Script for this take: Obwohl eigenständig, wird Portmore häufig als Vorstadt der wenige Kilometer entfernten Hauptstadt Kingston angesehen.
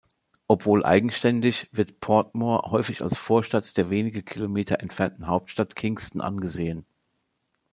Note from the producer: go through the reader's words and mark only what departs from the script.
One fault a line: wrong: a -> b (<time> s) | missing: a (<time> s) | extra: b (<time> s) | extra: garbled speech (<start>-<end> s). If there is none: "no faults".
no faults